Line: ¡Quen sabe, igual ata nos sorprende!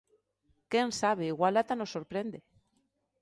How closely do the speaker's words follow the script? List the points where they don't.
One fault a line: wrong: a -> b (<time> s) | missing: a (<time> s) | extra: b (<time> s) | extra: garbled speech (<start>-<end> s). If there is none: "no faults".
no faults